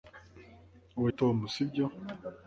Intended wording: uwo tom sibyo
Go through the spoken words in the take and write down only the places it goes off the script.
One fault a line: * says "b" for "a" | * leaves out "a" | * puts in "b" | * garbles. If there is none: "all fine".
all fine